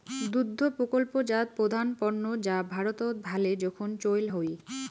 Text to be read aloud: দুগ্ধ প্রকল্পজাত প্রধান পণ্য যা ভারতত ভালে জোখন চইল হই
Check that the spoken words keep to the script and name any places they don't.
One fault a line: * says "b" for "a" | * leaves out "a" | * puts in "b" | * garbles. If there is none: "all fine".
all fine